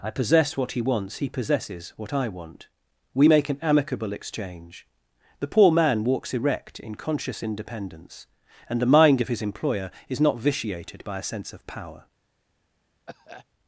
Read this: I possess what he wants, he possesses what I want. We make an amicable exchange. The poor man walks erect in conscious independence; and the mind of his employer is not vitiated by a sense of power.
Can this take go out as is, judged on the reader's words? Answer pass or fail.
pass